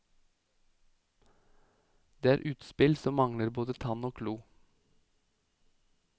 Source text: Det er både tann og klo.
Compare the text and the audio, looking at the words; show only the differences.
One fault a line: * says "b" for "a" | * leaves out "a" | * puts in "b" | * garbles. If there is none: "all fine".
* puts in "utspill som mangler"